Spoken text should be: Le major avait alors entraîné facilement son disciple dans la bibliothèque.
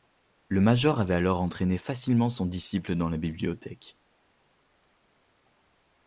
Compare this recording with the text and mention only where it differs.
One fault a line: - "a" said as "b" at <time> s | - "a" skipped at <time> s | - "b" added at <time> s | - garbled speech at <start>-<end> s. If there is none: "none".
none